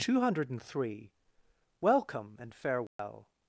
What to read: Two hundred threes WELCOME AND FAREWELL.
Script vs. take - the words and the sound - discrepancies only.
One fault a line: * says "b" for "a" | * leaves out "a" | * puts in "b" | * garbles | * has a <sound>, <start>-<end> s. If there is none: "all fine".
* says "three" for "threes"
* has a dropout, 2.9-3.0 s